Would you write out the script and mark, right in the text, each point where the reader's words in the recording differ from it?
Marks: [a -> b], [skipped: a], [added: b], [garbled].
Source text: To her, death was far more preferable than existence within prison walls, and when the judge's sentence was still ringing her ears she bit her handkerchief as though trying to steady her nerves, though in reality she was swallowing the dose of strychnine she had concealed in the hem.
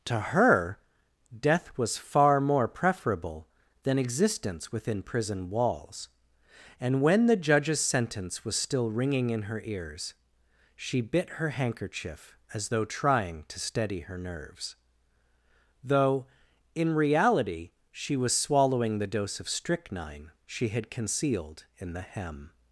To her, death was far more preferable than existence within prison walls, and when the judge's sentence was still ringing [added: in] her ears she bit her handkerchief as though trying to steady her nerves, though in reality she was swallowing the dose of strychnine she had concealed in the hem.